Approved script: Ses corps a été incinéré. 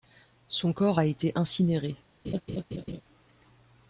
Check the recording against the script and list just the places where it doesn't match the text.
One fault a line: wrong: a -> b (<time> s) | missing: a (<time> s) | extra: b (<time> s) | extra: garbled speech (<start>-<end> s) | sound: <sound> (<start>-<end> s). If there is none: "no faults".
wrong: Ses -> Son (0.5 s)
sound: laugh (2.2-3.0 s)